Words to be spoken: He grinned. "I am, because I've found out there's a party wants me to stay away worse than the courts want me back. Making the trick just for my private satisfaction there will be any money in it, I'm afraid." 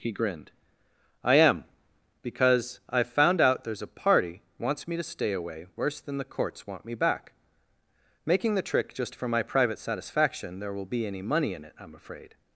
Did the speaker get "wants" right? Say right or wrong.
right